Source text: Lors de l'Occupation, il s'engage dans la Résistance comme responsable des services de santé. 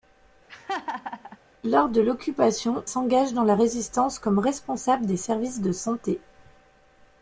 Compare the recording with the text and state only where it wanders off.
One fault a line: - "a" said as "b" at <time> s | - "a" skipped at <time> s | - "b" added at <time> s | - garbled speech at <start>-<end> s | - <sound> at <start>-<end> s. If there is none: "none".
- laugh at 0.5-1.4 s
- "il" skipped at 2.8 s